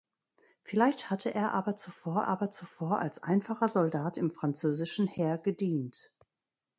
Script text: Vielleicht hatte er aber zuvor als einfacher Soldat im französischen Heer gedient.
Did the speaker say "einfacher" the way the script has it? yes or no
yes